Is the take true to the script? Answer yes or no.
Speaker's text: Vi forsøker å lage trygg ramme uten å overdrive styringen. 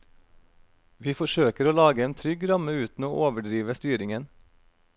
no